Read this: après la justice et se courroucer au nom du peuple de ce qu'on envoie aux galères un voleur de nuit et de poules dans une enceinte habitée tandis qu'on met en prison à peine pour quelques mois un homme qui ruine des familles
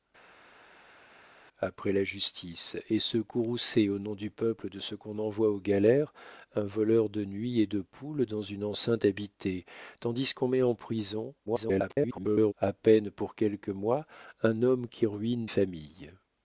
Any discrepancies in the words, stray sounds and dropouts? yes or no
yes